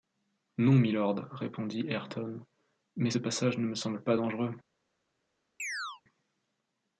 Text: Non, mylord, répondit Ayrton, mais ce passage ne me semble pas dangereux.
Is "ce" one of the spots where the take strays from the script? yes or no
no